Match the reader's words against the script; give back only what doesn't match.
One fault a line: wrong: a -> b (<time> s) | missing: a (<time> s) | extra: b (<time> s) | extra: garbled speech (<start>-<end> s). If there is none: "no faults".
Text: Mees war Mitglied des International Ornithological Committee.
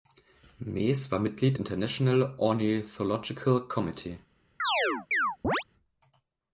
missing: des (1.6 s)